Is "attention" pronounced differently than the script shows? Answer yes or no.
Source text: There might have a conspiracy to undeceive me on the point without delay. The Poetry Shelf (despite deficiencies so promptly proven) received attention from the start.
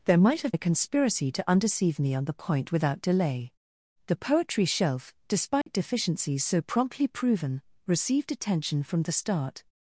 no